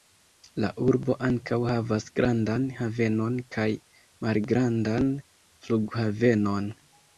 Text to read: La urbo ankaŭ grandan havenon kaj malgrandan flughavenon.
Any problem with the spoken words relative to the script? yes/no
yes